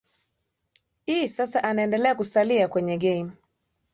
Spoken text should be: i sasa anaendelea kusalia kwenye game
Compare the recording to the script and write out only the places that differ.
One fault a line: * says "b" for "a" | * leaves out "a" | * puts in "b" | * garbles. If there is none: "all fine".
all fine